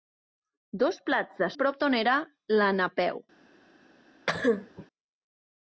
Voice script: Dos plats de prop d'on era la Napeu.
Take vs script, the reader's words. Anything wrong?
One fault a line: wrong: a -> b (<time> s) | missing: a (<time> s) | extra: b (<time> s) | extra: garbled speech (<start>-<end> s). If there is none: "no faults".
no faults